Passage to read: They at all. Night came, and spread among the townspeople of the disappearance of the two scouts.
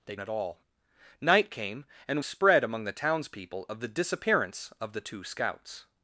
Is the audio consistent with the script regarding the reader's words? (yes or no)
yes